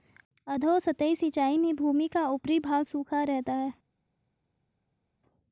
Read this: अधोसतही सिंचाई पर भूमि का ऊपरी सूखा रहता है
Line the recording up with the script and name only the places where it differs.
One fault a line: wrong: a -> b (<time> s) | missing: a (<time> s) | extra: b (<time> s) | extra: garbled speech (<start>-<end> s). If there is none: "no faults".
wrong: पर -> में (1.6 s)
extra: भाग (2.6 s)